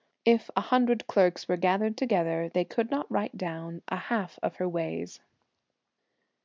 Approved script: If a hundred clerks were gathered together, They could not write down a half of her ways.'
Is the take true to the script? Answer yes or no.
yes